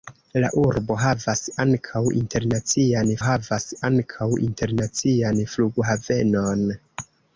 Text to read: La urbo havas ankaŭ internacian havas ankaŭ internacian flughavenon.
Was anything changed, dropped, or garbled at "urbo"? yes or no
no